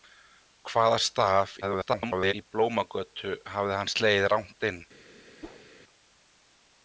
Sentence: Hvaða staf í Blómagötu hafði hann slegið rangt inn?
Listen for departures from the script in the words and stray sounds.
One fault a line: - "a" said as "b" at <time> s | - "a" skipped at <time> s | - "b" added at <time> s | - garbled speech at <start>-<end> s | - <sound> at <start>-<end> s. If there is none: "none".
- garbled speech at 1.6-2.3 s
- whoosh at 5.4-5.7 s